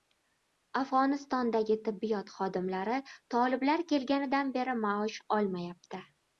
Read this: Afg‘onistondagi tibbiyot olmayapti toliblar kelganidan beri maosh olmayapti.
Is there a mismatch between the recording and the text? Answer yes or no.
yes